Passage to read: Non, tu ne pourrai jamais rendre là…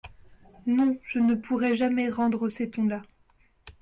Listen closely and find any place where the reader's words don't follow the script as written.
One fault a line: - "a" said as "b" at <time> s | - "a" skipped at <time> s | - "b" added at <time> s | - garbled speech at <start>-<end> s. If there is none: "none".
- "tu" said as "je" at 1.1 s
- "ces tons" added at 2.5 s